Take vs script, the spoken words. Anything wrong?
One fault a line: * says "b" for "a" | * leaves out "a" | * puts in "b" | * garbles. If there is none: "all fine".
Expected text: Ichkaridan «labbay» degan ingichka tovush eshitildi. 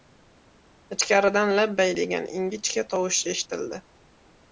all fine